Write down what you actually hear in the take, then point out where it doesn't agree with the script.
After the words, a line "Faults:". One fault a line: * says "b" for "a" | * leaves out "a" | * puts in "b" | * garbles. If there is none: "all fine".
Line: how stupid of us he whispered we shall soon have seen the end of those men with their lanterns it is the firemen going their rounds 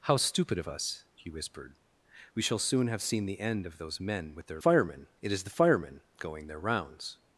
how stupid of us he whispered we shall soon have seen the end of those men with their firemen it is the firemen going their rounds
Faults:
* says "firemen" for "lanterns"